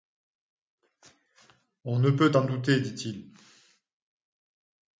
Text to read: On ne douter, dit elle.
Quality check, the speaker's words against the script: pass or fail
fail